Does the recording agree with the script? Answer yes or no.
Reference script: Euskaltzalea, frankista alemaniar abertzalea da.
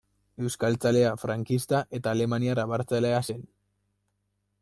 no